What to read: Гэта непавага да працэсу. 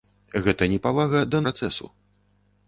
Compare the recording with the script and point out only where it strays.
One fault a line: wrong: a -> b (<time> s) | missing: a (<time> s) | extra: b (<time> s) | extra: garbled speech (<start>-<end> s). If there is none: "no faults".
no faults